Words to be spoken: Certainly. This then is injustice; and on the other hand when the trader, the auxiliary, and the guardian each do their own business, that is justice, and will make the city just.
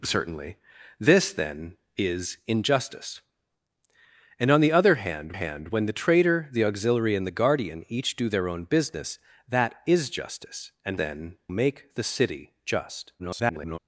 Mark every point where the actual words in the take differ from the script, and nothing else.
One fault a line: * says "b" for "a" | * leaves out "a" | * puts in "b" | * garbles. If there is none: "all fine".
* puts in "hand"
* says "then" for "will"
* garbles